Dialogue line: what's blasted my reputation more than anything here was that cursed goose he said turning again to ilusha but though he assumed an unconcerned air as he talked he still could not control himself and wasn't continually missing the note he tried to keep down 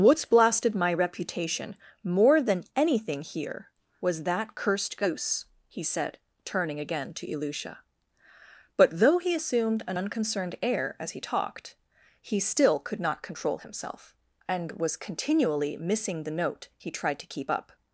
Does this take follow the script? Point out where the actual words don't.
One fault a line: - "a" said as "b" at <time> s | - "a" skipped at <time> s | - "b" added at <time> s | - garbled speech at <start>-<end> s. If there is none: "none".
- "wasn't" said as "was" at 14.7 s
- "down" said as "up" at 17.5 s